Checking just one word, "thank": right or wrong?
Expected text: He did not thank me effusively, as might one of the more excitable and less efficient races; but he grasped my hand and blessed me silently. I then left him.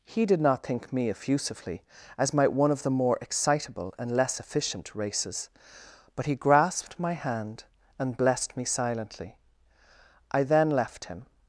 wrong